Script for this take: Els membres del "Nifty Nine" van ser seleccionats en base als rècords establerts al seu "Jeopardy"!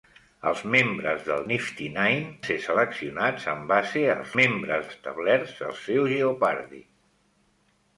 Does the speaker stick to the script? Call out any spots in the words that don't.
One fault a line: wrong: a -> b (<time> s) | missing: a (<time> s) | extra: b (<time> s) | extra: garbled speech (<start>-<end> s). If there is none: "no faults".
missing: van (2.3 s)
wrong: rècords -> membres (4.4 s)